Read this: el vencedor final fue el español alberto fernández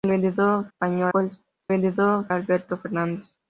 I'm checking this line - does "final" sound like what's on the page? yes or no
no